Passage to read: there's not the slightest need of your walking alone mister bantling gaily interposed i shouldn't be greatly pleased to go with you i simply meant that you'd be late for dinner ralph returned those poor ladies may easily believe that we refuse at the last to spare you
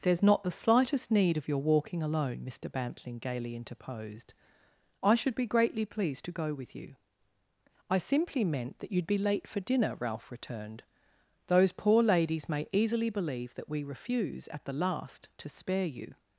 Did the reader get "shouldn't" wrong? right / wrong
wrong